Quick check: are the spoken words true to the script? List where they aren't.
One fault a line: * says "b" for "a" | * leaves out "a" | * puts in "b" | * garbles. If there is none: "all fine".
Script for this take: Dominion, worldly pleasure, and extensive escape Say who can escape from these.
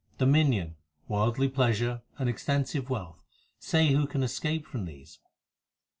* says "wealth" for "escape"